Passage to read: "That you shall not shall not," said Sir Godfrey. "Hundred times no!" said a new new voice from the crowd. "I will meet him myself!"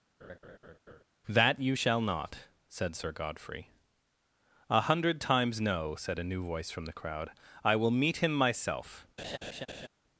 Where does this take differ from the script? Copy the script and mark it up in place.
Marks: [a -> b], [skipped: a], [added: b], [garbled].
"That you shall not [skipped: shall not,"] said Sir Godfrey. [added: A] "Hundred times no!" said a new [skipped: new] voice from the crowd. "I will meet him myself!"